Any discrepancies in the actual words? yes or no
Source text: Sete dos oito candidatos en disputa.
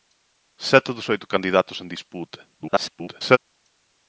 yes